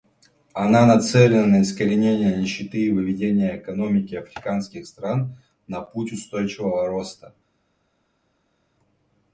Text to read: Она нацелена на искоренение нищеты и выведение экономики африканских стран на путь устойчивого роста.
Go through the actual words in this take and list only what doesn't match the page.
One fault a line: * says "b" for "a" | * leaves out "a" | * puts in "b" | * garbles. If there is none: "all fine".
all fine